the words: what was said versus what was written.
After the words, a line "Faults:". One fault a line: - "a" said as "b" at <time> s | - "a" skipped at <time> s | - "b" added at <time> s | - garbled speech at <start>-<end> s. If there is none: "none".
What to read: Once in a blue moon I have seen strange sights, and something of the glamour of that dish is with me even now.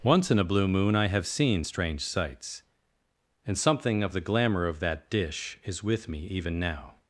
Once in a blue moon I have seen strange sights, and something of the glamour of that dish is with me even now.
Faults:
none